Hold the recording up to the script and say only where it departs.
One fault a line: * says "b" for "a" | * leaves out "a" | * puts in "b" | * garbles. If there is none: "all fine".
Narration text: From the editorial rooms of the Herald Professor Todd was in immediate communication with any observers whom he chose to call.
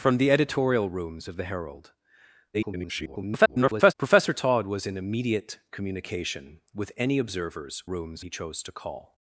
* garbles
* says "rooms" for "whom"